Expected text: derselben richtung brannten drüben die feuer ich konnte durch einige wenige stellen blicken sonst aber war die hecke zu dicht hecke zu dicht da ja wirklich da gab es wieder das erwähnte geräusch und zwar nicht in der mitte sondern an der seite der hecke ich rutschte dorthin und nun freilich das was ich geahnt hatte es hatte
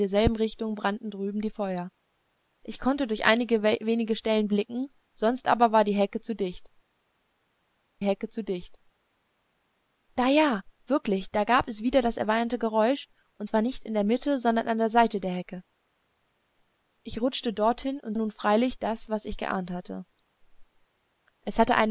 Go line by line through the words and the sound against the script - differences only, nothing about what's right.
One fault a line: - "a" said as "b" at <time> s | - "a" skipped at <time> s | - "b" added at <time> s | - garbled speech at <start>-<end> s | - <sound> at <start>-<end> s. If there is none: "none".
none